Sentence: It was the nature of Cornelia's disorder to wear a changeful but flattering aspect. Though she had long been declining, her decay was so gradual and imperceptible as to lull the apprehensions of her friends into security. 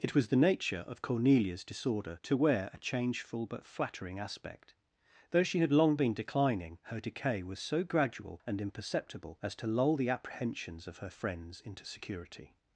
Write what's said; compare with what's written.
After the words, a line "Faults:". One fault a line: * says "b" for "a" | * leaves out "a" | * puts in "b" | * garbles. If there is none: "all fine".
It was the nature of Cornelia's disorder to wear a changeful but flattering aspect. Though she had long been declining, her decay was so gradual and imperceptible as to lull the apprehensions of her friends into security.
Faults:
all fine